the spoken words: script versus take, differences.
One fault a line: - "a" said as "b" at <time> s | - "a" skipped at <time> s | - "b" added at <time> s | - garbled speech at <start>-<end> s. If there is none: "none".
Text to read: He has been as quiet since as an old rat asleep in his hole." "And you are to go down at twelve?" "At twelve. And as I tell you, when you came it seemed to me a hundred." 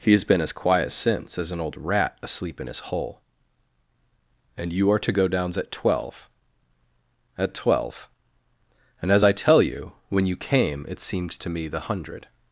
- "down" said as "downs" at 5.3 s
- "a" said as "the" at 11.7 s